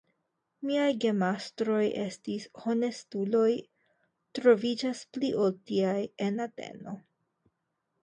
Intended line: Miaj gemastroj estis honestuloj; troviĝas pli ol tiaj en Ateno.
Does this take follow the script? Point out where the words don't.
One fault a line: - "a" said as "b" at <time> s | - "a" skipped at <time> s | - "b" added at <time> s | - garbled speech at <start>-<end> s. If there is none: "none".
none